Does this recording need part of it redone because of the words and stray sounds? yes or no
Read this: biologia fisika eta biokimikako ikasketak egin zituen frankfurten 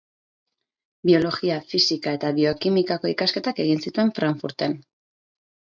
no